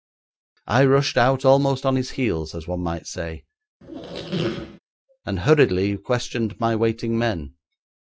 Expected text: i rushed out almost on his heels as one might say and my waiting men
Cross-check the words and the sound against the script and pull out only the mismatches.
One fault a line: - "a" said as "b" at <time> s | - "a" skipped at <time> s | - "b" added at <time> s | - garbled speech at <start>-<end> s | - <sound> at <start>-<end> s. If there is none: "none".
- squeak at 3.8-4.8 s
- "hurriedly questioned" added at 5.4 s